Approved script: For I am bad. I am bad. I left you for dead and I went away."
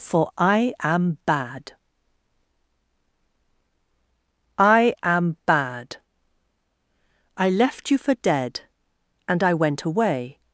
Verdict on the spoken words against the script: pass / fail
pass